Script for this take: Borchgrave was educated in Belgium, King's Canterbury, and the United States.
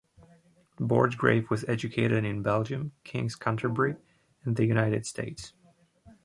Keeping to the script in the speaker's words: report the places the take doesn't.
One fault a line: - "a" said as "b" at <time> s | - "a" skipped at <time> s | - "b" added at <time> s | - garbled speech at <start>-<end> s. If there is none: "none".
none